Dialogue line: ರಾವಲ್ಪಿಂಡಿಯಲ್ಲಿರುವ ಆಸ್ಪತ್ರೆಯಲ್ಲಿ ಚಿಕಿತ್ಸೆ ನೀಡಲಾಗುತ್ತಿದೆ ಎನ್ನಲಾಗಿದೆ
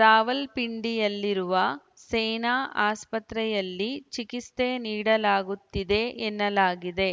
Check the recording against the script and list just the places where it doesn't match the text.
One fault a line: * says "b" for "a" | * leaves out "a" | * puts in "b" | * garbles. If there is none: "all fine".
* puts in "ಸೇನಾ"